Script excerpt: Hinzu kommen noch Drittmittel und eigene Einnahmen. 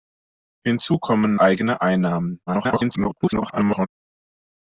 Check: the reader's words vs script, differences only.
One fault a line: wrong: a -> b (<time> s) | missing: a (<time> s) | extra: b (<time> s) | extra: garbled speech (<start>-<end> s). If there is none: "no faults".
missing: noch Drittmittel und (1.4 s)
extra: garbled speech (2.5-3.9 s)